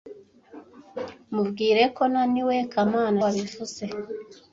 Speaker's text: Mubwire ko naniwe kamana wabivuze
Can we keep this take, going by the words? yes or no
yes